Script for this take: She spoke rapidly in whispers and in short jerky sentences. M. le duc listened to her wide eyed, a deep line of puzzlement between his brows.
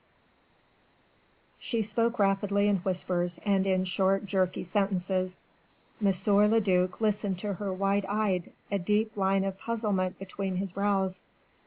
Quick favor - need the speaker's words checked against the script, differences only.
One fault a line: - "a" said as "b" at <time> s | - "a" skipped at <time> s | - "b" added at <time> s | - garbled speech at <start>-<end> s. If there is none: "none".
none